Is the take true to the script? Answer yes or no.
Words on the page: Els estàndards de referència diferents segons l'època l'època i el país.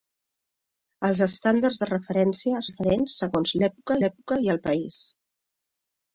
yes